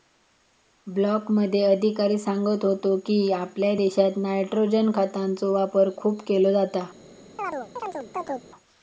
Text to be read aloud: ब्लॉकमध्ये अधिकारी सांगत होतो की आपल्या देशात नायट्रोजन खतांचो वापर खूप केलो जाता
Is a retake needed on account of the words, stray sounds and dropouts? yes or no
yes